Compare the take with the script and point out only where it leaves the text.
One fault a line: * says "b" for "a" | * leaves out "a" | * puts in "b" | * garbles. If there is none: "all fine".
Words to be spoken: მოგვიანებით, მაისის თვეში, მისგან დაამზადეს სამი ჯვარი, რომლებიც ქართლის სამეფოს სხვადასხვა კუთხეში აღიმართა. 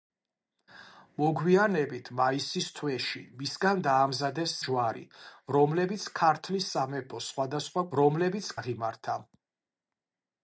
* leaves out "სამი"
* says "რომლებიც" for "კუთხეში"